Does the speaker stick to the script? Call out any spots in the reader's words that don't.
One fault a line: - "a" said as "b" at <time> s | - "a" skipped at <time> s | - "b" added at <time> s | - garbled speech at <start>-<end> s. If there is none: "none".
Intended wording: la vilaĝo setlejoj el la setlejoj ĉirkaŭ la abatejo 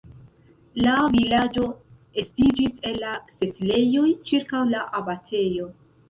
- "setlejoj" said as "estiĝis" at 2.2 s